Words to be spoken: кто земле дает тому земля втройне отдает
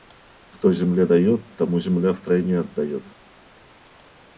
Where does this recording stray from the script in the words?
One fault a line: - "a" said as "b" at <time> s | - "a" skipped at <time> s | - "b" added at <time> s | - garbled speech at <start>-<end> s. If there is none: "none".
none